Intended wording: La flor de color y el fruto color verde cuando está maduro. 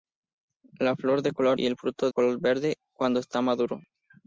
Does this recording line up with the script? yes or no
yes